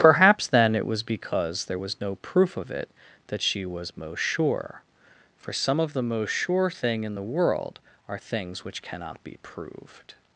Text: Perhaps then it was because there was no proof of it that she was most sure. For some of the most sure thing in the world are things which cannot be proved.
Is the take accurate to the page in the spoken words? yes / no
yes